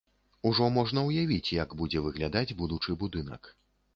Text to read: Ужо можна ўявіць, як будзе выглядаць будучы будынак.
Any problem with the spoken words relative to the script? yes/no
no